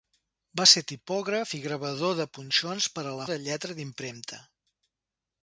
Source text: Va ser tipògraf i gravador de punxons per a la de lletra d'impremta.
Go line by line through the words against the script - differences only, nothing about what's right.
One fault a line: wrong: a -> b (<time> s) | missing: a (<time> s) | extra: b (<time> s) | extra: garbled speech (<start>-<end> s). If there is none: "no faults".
no faults